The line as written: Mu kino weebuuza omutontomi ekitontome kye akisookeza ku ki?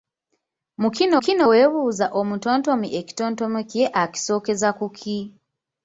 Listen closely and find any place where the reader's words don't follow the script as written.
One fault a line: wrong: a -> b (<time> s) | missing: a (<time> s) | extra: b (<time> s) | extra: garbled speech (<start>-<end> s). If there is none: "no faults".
extra: kino (1.2 s)